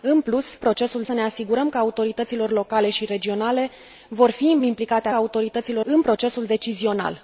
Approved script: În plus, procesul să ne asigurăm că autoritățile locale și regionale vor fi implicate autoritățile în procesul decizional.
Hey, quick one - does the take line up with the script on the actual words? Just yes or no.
yes